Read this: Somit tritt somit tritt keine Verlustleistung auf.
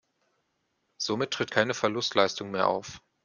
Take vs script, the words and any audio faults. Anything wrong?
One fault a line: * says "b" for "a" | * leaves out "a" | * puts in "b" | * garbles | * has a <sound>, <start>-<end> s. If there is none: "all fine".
* leaves out "somit tritt"
* puts in "mehr"